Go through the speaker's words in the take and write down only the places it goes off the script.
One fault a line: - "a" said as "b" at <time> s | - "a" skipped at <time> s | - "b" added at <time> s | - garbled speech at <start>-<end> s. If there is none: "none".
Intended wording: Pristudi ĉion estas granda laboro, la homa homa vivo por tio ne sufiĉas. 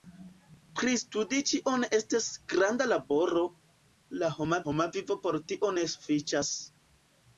none